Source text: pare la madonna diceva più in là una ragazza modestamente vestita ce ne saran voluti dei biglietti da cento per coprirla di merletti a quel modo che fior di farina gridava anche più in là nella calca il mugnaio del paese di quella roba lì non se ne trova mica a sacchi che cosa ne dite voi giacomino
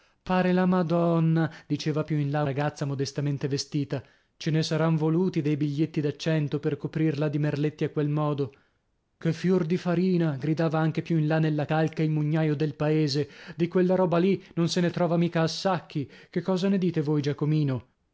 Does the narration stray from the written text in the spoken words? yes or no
yes